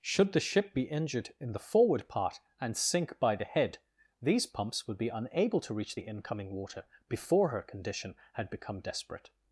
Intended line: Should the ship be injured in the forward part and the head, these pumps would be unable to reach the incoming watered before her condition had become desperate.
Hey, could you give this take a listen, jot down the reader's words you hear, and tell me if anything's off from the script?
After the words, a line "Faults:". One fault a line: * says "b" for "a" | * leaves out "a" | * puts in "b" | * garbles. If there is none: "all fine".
Should the ship be injured in the forward part and sink by the head, these pumps would be unable to reach the incoming water before her condition had become desperate.
Faults:
* puts in "sink by"
* says "water" for "watered"